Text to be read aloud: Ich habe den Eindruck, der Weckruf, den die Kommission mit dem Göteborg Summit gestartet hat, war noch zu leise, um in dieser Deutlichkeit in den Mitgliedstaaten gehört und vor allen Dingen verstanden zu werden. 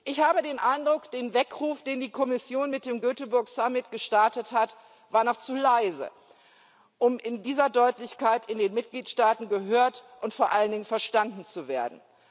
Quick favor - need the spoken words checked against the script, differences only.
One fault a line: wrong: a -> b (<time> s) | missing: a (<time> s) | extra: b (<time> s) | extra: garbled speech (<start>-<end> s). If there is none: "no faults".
no faults